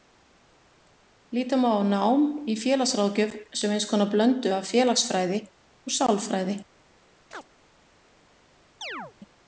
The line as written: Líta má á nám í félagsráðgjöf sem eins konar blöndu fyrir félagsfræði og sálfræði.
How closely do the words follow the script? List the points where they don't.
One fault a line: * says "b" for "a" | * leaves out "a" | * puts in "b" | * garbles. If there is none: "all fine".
* says "af" for "fyrir"